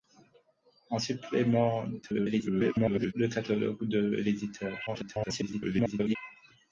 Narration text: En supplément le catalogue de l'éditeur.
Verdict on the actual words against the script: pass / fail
fail